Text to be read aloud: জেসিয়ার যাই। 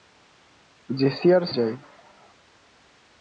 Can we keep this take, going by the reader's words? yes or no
yes